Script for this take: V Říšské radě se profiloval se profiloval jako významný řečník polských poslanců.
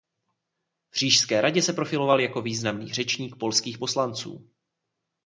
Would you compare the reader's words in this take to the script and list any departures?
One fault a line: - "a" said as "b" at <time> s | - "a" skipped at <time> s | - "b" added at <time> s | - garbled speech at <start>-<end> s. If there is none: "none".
- "se profiloval" skipped at 2.2 s